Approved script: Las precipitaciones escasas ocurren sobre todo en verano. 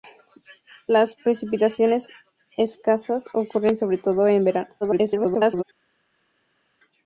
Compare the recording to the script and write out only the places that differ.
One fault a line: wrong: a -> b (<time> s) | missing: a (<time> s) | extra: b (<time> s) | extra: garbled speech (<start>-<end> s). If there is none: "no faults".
extra: garbled speech (4.8-5.6 s)